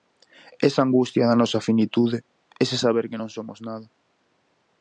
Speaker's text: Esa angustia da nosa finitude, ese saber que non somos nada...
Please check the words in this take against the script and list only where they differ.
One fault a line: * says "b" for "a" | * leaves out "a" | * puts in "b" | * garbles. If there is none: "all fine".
all fine